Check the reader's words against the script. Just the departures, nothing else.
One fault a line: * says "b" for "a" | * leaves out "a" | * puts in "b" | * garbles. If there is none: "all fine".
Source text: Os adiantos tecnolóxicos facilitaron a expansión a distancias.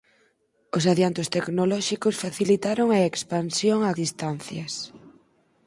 all fine